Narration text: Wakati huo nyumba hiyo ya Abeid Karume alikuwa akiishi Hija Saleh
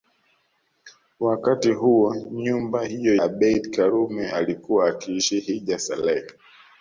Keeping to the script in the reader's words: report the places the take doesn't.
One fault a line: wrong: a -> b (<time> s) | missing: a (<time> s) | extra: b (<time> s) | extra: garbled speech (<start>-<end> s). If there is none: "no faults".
missing: ya (3.2 s)